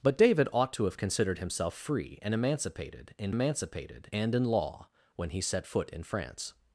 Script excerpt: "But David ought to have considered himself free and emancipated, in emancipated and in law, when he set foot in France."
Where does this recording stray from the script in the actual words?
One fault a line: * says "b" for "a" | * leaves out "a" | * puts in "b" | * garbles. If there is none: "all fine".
all fine